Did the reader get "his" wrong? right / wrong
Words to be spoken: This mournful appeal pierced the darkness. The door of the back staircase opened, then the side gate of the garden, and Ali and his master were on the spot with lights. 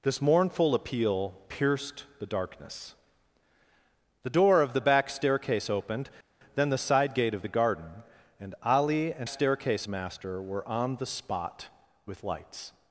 wrong